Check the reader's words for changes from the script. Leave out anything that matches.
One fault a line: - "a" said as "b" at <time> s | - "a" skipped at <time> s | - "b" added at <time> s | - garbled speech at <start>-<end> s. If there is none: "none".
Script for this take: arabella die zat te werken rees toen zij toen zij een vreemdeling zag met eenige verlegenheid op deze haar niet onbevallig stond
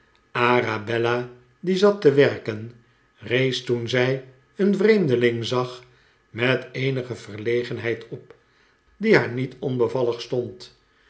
- "toen zij" skipped at 4.2 s
- "deze" said as "die" at 9.0 s